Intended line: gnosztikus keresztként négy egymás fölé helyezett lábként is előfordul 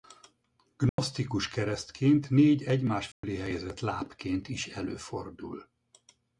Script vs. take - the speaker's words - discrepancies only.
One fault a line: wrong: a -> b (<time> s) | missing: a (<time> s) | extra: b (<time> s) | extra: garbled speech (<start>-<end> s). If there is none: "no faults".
no faults